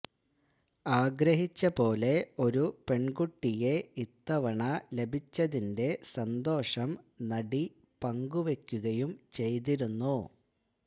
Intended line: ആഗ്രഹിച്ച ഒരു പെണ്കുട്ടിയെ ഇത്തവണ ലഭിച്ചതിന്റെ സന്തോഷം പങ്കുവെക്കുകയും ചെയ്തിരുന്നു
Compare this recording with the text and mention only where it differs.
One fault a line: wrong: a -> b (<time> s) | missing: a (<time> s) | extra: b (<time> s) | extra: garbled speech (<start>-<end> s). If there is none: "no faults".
extra: പോലെ (1.8 s)
extra: നടി (7.3 s)